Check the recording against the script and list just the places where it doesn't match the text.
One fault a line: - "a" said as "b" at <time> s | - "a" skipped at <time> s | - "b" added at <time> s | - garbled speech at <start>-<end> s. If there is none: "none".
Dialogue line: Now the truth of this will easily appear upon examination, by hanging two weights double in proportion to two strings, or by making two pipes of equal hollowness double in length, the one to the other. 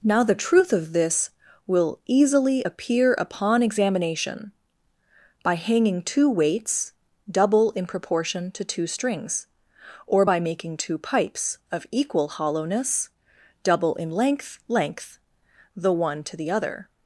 - "length" added at 14.7 s